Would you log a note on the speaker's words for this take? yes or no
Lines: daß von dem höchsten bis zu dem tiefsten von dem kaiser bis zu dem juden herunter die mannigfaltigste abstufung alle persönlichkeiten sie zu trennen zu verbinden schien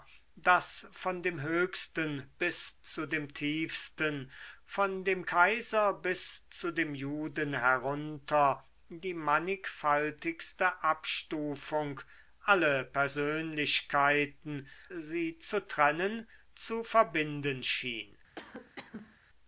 no